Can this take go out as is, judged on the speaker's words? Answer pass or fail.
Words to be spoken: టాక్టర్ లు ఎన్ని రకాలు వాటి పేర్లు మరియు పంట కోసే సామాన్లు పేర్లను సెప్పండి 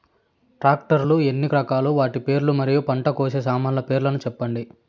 pass